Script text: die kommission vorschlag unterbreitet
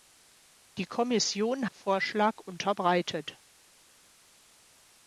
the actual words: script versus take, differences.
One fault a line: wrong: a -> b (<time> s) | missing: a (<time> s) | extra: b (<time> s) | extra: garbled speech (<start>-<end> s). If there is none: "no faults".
no faults